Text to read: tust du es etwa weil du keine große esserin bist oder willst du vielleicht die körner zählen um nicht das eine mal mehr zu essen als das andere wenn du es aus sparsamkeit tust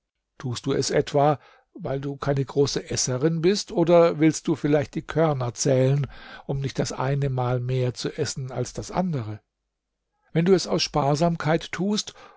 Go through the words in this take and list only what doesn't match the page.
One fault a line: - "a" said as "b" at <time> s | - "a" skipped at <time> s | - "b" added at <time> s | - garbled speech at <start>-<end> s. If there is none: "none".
none